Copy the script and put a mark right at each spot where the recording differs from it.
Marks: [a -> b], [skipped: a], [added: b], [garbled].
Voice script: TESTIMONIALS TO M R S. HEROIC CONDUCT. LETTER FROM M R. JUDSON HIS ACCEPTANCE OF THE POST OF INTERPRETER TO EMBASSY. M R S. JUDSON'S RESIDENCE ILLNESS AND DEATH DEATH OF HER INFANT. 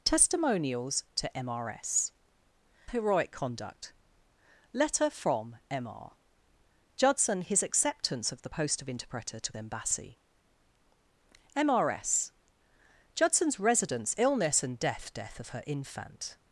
TESTIMONIALS TO M R S. HEROIC CONDUCT. LETTER FROM M R. JUDSON HIS ACCEPTANCE OF THE POST OF INTERPRETER TO EMBASSY. M R S. JUDSON'S RESIDENCE ILLNESS AND DEATH DEATH OF HER INFANT.